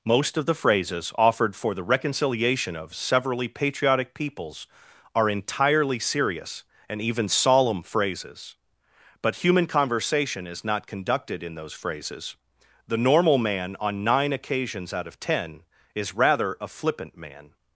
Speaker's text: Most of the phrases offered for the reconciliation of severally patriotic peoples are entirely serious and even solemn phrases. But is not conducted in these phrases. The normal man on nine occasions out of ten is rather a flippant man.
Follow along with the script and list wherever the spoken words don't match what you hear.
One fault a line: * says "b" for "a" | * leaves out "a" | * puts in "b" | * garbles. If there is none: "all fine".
* puts in "human conversation"
* says "those" for "these"